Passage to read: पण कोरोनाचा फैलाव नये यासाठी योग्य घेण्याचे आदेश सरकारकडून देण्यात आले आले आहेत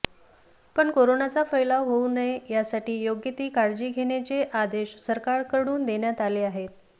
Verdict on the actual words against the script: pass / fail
fail